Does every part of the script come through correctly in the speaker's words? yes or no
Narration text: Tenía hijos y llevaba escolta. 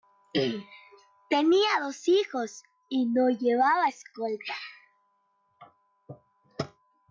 no